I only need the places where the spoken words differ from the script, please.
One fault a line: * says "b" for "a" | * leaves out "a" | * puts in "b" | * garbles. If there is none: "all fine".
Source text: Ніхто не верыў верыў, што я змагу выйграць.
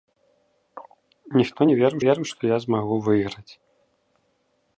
all fine